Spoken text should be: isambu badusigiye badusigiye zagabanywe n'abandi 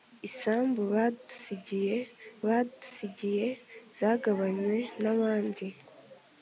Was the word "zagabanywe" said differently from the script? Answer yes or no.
no